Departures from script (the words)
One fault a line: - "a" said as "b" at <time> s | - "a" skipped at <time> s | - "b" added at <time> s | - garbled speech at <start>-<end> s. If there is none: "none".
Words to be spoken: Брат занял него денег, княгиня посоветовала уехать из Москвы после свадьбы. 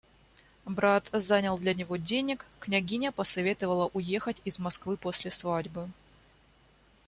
- "для" added at 1.6 s